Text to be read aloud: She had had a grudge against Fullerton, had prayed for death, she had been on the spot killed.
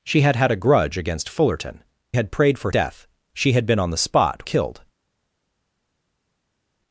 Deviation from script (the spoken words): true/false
false